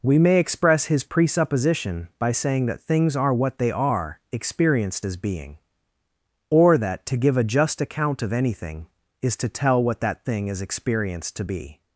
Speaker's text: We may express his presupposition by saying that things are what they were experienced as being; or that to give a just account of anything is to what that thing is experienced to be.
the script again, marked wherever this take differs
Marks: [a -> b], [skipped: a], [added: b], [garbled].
We may express his presupposition by saying that things are what they [were -> are] experienced as being; or that to give a just account of anything is to [added: tell] what that thing is experienced to be.